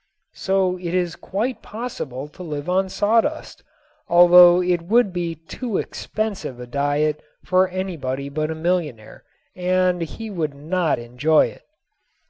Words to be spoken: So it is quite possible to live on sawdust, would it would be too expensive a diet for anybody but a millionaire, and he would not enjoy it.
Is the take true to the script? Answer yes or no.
no